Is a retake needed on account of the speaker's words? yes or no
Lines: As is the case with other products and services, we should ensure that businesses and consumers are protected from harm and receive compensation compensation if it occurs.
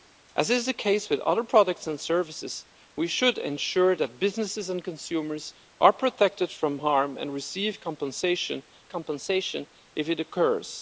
no